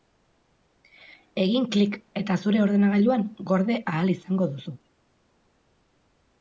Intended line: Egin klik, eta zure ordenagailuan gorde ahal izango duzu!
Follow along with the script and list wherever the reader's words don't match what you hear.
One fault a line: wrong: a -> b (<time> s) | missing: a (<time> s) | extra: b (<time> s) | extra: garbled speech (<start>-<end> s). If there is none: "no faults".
no faults